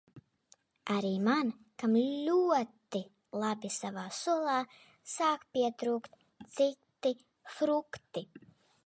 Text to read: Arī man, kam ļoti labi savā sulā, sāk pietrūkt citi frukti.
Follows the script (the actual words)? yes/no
yes